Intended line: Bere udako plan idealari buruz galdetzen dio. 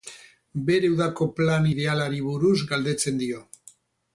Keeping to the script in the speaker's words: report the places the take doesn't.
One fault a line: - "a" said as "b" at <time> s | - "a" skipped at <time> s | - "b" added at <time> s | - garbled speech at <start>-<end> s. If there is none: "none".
none